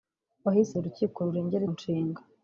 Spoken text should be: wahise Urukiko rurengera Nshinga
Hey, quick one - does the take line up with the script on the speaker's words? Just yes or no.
yes